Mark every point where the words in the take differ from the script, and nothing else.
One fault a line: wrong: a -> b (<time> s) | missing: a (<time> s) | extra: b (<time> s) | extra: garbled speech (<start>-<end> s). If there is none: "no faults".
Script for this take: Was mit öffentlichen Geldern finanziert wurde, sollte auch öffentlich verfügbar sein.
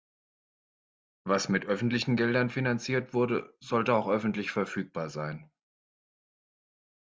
no faults